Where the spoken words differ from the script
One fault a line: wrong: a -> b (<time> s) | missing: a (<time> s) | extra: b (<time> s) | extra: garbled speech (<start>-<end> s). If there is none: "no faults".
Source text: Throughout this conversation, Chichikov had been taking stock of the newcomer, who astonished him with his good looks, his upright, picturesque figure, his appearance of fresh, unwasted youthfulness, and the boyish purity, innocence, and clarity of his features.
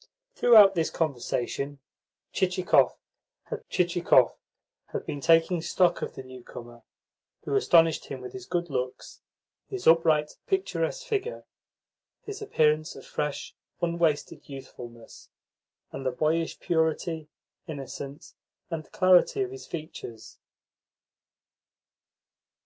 extra: Chichikov had (3.7 s)